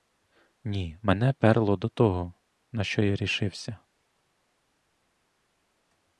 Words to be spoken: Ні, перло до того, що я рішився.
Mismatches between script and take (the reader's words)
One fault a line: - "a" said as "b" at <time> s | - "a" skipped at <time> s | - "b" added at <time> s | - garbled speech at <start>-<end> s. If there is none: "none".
- "мене" added at 1.0 s
- "на" added at 2.7 s